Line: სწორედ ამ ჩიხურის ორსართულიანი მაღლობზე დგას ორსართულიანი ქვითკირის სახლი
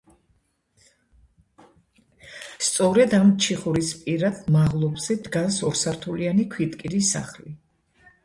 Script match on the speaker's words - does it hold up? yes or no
no